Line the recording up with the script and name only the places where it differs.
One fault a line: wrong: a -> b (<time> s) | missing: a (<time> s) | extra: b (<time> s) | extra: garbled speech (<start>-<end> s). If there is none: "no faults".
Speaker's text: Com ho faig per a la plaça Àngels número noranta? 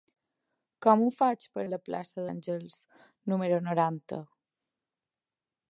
no faults